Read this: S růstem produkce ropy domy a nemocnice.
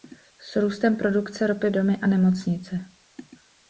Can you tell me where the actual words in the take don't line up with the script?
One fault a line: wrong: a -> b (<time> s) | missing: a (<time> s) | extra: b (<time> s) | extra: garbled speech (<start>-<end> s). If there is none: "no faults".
no faults